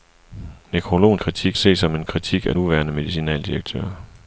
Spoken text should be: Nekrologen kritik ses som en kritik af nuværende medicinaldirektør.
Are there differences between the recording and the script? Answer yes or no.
no